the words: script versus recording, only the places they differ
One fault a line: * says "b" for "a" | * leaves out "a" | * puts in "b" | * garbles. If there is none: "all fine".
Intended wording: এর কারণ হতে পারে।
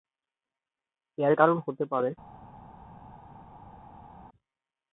all fine